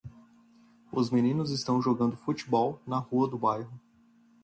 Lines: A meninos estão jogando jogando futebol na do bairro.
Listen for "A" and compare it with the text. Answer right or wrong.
wrong